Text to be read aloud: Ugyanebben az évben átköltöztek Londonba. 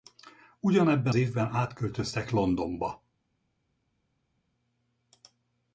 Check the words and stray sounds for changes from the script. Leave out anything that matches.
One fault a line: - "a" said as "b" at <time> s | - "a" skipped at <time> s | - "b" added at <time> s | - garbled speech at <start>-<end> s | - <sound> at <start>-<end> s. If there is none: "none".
- "az" skipped at 1.1 s